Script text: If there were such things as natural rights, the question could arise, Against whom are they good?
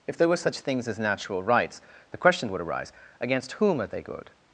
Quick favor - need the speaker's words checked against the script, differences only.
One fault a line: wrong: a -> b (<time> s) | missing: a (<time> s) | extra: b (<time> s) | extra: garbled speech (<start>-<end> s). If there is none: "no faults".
wrong: could -> would (2.5 s)